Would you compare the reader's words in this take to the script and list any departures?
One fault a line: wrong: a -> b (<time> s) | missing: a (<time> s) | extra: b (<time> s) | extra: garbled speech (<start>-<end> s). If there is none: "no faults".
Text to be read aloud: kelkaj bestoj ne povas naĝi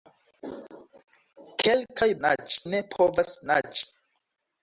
wrong: bestoj -> naĝi (2.3 s)